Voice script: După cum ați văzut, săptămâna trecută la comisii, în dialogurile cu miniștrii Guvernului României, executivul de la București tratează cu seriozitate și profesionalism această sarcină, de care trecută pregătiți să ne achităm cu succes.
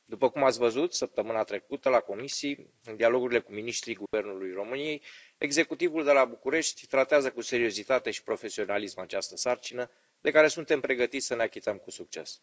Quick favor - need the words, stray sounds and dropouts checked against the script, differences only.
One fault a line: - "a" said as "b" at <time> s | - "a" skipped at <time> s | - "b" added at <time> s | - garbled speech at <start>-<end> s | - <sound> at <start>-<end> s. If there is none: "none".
- dropout at 4.1-4.1 s
- "trecută" said as "suntem" at 10.5 s